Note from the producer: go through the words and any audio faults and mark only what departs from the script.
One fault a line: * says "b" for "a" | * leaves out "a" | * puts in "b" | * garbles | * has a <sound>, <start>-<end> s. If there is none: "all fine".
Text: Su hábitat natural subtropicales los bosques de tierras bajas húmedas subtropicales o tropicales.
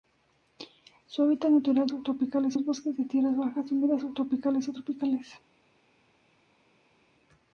all fine